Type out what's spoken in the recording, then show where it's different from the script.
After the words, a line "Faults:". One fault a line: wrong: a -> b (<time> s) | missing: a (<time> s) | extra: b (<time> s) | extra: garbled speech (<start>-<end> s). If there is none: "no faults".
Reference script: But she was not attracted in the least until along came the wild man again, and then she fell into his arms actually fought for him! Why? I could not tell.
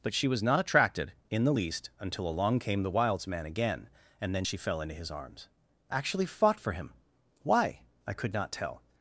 But she was not attracted in the least until along came the wilds man again, and then she fell into his arms actually fought for him! Why? I could not tell.
Faults:
wrong: wild -> wilds (2.9 s)